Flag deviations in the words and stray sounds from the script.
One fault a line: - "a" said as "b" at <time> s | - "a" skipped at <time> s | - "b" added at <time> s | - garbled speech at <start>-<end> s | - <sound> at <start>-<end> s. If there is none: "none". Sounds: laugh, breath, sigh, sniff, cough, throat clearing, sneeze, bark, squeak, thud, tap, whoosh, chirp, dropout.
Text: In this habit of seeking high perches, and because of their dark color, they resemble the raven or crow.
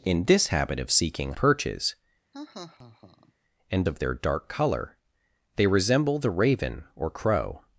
- "high" skipped at 1.3 s
- laugh at 2.3-3.3 s
- "because" skipped at 3.8 s